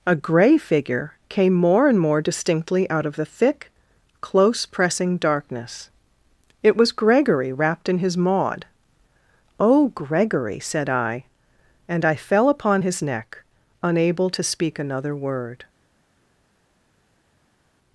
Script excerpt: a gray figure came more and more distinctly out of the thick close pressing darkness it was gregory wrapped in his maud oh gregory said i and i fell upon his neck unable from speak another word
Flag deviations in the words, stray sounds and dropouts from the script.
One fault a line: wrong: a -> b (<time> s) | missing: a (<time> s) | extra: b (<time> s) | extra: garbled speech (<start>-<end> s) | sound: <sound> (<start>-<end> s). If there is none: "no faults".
wrong: from -> to (14.3 s)